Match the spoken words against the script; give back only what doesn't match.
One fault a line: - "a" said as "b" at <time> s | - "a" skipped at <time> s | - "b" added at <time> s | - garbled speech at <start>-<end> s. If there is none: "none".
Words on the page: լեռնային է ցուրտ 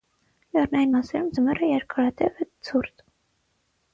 - "մասերում ձմեռը երկարատև" added at 0.9 s